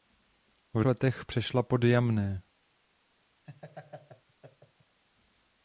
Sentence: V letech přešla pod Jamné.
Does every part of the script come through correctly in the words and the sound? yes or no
no